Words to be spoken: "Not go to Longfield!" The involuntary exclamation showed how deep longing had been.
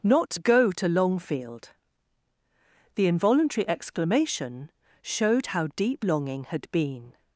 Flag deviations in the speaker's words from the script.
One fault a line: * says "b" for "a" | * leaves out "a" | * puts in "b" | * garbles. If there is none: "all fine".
all fine